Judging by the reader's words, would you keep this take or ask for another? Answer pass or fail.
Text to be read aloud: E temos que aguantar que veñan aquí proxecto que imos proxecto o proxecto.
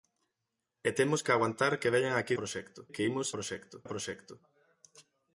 pass